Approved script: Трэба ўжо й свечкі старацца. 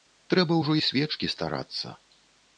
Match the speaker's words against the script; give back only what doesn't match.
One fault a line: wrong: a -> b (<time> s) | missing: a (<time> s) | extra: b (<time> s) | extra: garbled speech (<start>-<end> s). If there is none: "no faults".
no faults